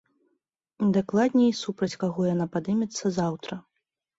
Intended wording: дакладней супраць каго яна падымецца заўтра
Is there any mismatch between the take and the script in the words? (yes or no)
no